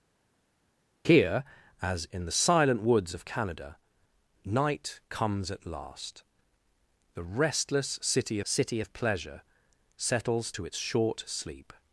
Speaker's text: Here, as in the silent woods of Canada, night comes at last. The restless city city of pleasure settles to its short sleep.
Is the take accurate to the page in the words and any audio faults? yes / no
yes